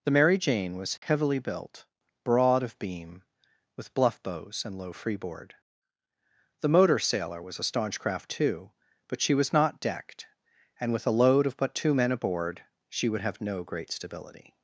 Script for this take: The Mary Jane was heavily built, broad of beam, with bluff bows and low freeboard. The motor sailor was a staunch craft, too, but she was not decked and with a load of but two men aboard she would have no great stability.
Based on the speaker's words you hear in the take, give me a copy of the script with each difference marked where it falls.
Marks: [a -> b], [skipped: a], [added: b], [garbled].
The Mary Jane was heavily built, broad of beam, with bluff bows and low freeboard. The motor sailor was a staunch craft, too, but she was not decked and with a load of but two men aboard she would have no great stability.